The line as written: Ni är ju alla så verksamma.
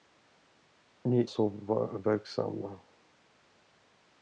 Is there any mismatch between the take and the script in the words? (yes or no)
yes